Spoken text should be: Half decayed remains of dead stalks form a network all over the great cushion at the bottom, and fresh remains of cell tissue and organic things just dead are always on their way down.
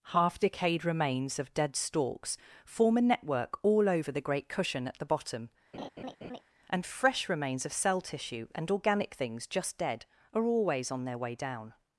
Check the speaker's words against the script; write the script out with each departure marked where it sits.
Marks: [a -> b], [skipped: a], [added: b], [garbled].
Half decayed remains of dead stalks form a network all over the great cushion at the bottom, and fresh remains of cell tissue and organic things just dead are always on their way down.